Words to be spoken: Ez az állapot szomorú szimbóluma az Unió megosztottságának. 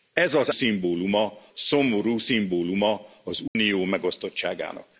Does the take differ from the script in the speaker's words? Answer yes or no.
yes